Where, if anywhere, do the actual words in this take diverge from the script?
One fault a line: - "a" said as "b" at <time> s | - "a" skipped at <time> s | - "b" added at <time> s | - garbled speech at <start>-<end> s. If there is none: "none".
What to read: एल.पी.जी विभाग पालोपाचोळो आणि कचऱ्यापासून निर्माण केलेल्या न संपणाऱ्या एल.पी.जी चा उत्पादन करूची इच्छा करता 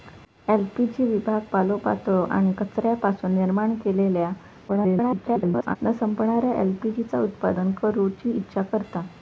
- garbled speech at 4.7-5.8 s